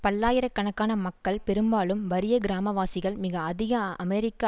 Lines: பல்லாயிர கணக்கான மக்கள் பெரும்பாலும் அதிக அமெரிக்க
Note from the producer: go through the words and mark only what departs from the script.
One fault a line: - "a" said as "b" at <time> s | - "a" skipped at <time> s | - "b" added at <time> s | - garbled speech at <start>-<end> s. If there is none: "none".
- "வறிய கிராமவாசிகள் மிக" added at 2.1 s